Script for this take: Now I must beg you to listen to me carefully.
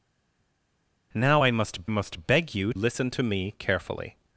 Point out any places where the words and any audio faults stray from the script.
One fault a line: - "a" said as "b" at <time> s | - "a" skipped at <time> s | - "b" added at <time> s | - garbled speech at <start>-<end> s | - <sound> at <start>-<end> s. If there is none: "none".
- "must" added at 1.9 s
- "to" skipped at 2.7 s